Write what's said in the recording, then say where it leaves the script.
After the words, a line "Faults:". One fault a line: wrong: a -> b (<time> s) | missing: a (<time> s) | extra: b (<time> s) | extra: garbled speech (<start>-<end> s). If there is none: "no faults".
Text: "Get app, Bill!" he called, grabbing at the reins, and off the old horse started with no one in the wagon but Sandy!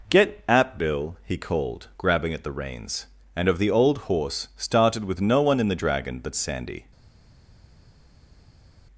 "Get app, Bill!" he called, grabbing at the reins, and of the old horse started with no one in the dragon but Sandy!
Faults:
wrong: off -> of (3.5 s)
wrong: wagon -> dragon (5.8 s)